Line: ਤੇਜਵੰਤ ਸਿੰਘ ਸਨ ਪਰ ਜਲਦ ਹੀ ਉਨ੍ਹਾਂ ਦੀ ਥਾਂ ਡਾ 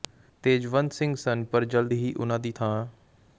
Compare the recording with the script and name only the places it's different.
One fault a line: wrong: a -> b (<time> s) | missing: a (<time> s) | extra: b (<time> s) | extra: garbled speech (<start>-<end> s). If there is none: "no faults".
no faults